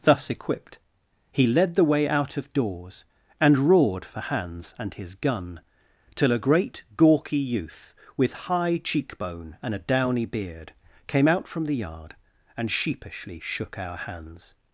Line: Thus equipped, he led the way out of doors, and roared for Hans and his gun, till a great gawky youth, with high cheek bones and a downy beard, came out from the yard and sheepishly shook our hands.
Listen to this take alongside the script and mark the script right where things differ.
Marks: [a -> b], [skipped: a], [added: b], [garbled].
Thus equipped, he led the way out of doors, and roared for Hans and his gun, till a great gawky youth, with high cheek [bones -> bone] and a downy beard, came out from the yard and sheepishly shook our hands.